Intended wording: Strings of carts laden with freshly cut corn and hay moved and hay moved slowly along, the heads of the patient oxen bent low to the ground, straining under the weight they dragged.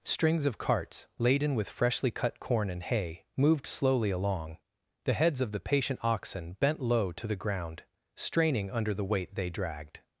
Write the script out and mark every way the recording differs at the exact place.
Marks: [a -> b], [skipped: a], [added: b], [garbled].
Strings of carts laden with freshly cut corn and hay moved [skipped: and hay moved] slowly along, the heads of the patient oxen bent low to the ground, straining under the weight they dragged.